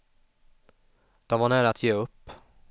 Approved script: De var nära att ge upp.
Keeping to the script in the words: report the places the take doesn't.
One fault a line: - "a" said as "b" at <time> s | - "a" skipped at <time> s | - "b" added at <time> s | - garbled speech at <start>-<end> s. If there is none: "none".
none